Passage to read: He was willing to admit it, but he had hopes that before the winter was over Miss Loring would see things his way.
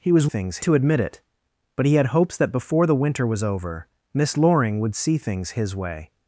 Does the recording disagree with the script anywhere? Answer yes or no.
yes